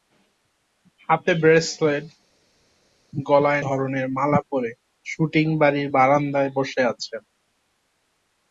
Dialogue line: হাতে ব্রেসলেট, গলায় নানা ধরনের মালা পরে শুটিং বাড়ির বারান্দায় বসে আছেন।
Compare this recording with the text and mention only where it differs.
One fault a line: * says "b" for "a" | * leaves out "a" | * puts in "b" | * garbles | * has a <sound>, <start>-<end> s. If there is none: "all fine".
* leaves out "নানা"